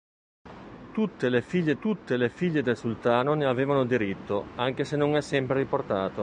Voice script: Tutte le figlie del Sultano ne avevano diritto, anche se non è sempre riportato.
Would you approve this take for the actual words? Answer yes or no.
no